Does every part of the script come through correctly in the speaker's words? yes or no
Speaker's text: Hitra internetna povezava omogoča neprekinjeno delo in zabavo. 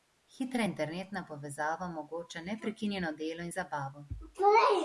yes